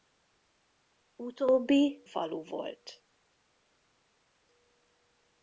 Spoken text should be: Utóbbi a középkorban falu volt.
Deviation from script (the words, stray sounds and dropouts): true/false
true